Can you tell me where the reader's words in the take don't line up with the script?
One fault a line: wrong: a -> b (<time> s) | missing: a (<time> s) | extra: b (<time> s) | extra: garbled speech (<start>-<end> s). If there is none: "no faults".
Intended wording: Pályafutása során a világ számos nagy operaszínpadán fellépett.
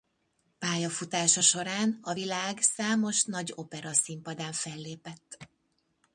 no faults